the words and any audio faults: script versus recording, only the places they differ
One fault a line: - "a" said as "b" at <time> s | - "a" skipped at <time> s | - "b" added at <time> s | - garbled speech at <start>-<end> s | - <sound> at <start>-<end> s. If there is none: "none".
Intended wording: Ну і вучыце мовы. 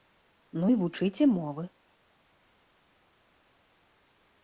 none